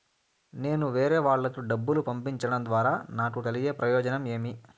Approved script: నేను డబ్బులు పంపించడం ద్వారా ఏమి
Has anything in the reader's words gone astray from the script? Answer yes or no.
yes